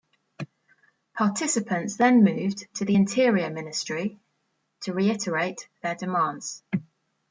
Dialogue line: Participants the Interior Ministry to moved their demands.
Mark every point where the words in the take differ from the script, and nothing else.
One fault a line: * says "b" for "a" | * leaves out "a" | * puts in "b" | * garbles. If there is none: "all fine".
* puts in "then moved to"
* says "reiterate" for "moved"